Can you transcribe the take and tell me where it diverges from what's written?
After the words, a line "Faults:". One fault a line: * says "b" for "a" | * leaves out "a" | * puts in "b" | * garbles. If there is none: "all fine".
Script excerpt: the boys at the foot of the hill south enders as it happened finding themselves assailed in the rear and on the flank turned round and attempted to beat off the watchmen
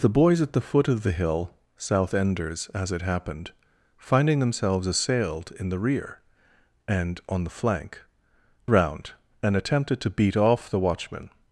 the boys at the foot of the hill south enders as it happened finding themselves assailed in the rear and on the flank round and attempted to beat off the watchmen
Faults:
* leaves out "turned"